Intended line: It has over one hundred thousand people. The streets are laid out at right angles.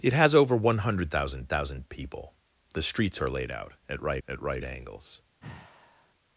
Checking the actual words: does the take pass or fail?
fail